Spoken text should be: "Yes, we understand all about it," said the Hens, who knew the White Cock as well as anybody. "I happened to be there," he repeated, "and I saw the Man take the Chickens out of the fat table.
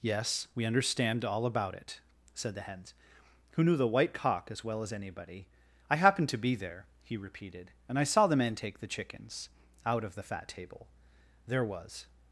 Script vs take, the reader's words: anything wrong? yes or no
yes